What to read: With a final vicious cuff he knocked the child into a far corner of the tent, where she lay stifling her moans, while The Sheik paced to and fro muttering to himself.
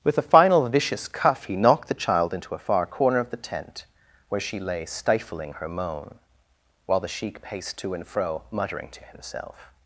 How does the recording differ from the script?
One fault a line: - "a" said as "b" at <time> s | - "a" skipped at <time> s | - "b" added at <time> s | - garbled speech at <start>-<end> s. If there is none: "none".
- "moans" said as "moan" at 5.7 s